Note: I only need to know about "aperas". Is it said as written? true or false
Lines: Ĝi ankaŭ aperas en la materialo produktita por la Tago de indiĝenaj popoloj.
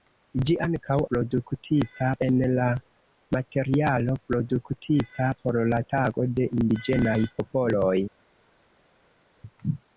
false